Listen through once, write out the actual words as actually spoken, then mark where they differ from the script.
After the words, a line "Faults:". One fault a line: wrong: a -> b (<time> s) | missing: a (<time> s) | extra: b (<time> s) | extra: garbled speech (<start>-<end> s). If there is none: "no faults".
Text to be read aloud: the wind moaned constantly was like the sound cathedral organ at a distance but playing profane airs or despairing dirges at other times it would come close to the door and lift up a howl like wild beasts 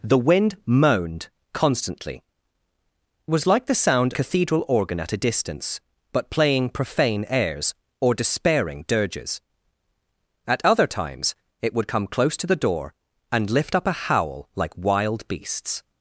the wind moaned constantly was like the sound cathedral organ at a distance but playing profane airs or despairing dirges at other times it would come close to the door and lift up a howl like wild beasts
Faults:
no faults